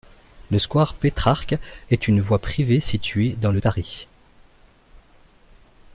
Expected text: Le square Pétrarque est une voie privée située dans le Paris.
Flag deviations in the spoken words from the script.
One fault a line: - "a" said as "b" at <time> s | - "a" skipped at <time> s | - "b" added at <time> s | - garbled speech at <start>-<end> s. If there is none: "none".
none